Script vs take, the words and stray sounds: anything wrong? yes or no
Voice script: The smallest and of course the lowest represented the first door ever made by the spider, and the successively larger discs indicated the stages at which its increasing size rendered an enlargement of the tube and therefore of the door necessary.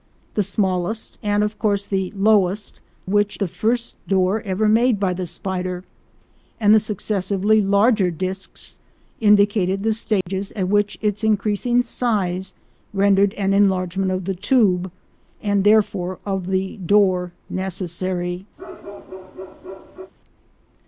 yes